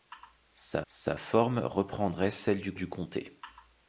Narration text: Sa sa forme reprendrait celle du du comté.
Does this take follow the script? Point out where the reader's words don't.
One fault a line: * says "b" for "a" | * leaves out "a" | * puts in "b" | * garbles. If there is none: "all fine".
all fine